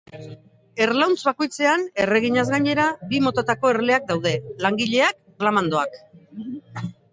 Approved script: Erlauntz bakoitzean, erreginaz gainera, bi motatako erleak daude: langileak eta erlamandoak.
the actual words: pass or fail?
fail